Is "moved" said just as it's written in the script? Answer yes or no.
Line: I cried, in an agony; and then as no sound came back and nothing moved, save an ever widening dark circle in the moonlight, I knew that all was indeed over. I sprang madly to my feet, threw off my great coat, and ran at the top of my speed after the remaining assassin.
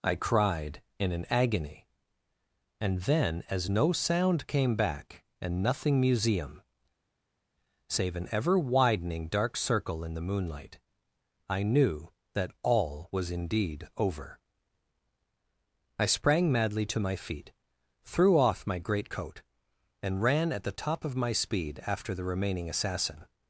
no